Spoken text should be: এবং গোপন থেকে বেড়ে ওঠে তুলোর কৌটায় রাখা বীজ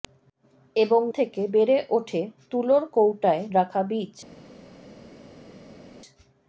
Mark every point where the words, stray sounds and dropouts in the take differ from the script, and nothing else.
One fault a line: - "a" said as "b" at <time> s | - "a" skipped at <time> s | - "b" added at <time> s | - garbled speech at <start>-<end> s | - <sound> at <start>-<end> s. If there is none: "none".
- "গোপন" skipped at 1.0 s